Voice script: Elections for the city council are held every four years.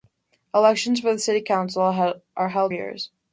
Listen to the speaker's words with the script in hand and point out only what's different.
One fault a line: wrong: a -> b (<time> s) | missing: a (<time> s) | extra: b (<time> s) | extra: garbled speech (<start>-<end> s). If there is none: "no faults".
missing: every four (2.7 s)